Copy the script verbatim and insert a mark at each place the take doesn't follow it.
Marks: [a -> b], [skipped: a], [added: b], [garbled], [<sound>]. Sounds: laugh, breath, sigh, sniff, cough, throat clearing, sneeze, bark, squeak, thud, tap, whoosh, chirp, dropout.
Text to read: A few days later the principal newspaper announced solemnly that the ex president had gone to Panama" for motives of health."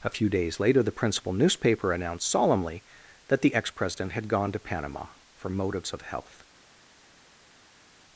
A few days later the principal newspaper announced solemnly that the ex president had gone to Panama" for motives of health."